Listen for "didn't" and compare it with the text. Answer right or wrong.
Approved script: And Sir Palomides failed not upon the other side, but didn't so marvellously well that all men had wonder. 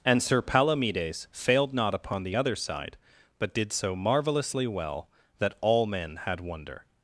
wrong